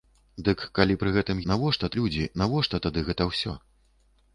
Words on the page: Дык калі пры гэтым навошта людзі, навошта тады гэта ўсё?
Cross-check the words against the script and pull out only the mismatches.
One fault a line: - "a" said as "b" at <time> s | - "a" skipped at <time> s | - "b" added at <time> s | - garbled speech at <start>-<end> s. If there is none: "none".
none